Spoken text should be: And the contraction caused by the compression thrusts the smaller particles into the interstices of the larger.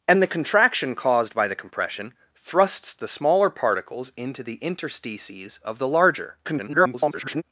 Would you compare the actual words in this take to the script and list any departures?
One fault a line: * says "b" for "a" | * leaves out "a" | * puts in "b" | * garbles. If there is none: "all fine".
* garbles